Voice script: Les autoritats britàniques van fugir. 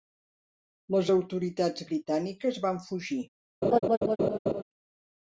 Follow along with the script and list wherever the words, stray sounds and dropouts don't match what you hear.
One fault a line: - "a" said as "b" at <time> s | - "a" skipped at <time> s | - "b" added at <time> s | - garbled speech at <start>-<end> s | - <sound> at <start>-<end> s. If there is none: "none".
- laugh at 3.6-4.6 s